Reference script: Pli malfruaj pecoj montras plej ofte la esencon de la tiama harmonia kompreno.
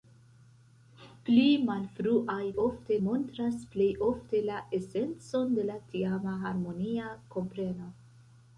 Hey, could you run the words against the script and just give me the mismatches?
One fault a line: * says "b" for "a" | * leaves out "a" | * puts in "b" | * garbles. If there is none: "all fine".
* says "ofte" for "pecoj"